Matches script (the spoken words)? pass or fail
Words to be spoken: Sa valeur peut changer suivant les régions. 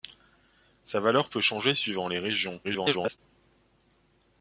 fail